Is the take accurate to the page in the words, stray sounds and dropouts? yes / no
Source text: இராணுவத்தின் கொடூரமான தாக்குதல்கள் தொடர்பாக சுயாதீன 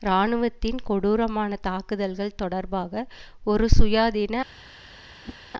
no